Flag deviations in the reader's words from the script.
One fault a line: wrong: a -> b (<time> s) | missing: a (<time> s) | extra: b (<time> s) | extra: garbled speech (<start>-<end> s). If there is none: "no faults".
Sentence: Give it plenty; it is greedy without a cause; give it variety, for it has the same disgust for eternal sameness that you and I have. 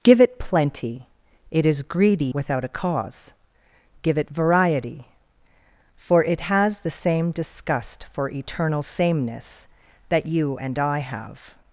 no faults